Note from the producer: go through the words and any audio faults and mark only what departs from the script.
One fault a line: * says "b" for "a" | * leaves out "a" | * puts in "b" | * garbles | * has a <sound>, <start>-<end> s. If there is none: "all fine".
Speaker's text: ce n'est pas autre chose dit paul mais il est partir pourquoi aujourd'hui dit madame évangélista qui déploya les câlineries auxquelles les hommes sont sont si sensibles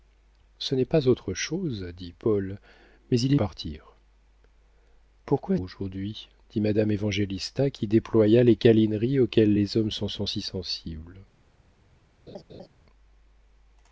* has a laugh, 12.3-12.7 s